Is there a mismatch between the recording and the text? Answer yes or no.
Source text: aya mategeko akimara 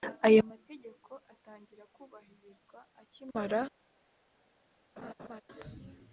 yes